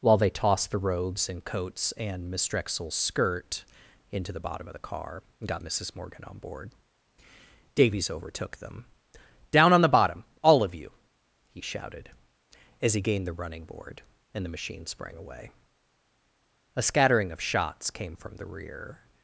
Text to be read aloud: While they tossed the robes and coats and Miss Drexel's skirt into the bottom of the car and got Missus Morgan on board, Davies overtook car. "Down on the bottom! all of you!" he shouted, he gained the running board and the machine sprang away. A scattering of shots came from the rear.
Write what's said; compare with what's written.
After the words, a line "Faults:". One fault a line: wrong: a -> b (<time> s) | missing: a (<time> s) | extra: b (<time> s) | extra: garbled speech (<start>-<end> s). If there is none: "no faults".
While they tossed the robes and coats and Miss Drexel's skirt into the bottom of the car and got Missus Morgan on board, Davies overtook them. "Down on the bottom! all of you!" he shouted, as he gained the running board and the machine sprang away. A scattering of shots came from the rear.
Faults:
wrong: car -> them (8.6 s)
extra: as (12.8 s)